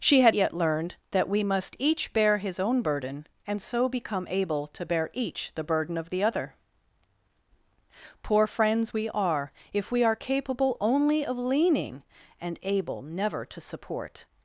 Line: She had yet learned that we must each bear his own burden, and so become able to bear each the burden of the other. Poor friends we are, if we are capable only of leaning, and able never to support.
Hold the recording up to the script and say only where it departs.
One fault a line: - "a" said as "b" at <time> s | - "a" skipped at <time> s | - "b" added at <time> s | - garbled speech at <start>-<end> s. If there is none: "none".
none